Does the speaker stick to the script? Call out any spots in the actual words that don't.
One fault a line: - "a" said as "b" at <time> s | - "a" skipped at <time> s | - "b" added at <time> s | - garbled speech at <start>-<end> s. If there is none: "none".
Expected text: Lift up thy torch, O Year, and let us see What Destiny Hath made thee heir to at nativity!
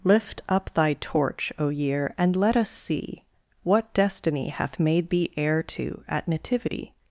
none